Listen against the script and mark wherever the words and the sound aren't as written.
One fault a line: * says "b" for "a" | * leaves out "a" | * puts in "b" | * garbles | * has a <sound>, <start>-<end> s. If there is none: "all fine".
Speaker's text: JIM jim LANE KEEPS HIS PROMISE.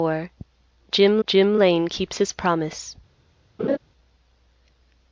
* has a laugh, 3.6-3.8 s